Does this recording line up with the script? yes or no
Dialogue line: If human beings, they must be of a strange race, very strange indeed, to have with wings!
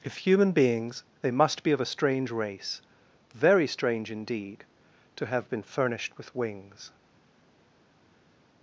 no